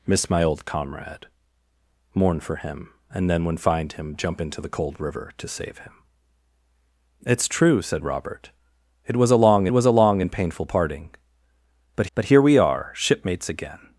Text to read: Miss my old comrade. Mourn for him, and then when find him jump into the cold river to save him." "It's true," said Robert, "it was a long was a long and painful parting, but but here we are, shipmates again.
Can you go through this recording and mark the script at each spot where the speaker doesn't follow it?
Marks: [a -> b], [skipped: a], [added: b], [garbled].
Miss my old comrade. Mourn for him, and then when find him jump into the cold river to save him." "It's true," said Robert, "it was a long was a long and painful parting, but but here we are, shipmates again.